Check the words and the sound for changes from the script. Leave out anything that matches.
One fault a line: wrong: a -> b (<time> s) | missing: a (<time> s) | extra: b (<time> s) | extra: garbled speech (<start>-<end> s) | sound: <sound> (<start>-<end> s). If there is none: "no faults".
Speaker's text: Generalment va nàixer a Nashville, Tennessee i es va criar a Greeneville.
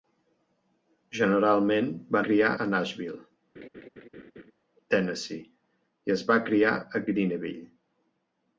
wrong: nàixer -> criar (2.3 s)
sound: laugh (3.5-4.5 s)